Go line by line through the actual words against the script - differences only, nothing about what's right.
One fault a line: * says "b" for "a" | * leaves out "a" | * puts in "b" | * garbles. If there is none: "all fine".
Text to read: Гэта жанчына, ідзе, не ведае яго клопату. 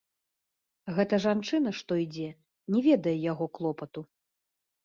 * puts in "што"